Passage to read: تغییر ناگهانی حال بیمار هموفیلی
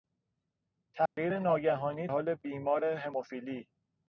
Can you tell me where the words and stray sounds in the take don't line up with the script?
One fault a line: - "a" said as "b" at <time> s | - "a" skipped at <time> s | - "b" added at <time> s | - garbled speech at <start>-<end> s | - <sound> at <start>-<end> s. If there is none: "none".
- dropout at 1.1-1.2 s